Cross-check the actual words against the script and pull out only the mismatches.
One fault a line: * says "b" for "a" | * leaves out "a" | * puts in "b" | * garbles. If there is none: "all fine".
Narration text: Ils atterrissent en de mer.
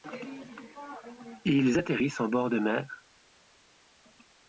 * puts in "bord"